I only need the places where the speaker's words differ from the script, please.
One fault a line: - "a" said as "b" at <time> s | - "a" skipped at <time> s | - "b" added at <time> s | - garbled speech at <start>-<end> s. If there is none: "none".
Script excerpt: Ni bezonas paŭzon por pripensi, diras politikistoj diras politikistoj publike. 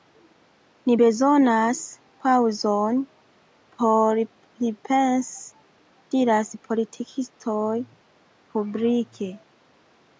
- "diras politikistoj" skipped at 7.7 s